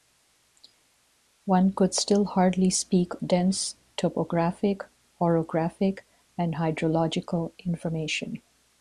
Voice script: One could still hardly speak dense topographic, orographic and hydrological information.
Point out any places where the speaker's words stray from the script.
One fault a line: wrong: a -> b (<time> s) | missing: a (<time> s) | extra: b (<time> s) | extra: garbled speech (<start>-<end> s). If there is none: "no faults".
no faults